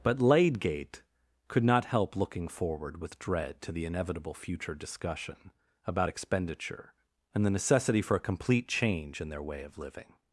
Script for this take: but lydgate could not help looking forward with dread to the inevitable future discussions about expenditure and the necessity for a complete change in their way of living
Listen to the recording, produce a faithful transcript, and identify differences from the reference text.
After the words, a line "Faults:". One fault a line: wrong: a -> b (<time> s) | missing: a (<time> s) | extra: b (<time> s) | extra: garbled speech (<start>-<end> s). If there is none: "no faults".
but lydgate could not help looking forward with dread to the inevitable future discussion about expenditure and the necessity for a complete change in their way of living
Faults:
wrong: discussions -> discussion (4.7 s)